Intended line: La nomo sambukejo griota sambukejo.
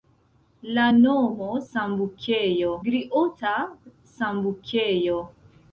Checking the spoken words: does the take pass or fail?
pass